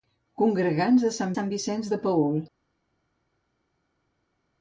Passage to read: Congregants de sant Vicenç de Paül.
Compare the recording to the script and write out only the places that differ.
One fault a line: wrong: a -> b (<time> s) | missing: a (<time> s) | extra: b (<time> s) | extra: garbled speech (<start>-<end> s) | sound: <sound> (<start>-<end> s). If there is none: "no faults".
extra: sant (1.3 s)